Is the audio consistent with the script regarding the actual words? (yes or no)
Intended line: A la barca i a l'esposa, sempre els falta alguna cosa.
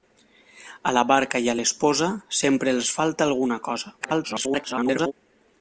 no